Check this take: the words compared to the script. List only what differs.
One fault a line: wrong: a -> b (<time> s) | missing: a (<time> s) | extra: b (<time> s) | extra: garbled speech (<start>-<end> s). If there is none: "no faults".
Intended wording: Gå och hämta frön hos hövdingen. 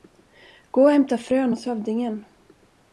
no faults